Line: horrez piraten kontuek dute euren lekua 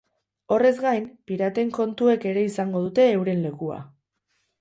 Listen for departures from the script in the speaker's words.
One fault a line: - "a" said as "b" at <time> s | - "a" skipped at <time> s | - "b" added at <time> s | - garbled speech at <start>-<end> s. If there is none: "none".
- "gain" added at 0.8 s
- "ere izango" added at 2.3 s